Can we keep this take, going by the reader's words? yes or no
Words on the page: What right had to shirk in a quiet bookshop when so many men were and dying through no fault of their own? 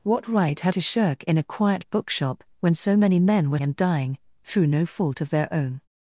yes